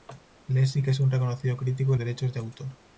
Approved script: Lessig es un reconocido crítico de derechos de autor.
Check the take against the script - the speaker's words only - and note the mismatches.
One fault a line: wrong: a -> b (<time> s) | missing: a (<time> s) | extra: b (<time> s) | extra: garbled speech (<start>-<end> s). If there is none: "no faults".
no faults